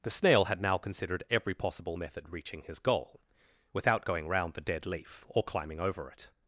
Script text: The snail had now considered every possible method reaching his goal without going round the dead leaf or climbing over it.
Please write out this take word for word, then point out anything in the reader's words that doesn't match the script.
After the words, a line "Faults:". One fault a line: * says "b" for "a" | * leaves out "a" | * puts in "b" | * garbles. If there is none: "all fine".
The snail had now considered every possible method reaching his goal without going round the dead leaf or climbing over it.
Faults:
all fine